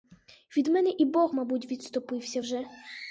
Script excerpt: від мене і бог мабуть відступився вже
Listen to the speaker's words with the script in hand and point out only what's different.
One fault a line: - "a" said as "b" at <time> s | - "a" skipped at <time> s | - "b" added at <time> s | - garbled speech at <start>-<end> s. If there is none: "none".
none